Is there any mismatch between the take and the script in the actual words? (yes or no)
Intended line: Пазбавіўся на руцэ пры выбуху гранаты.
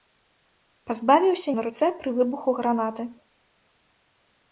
no